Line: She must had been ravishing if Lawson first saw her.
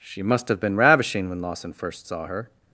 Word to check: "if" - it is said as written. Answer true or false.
false